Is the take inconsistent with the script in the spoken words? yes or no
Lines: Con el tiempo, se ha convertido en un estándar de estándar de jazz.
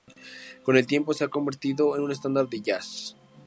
yes